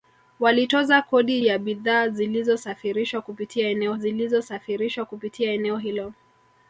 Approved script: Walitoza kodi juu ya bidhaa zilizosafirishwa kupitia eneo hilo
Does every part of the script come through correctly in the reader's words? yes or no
no